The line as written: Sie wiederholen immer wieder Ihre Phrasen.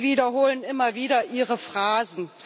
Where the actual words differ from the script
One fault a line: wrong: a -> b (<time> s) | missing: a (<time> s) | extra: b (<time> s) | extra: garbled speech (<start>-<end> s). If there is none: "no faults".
no faults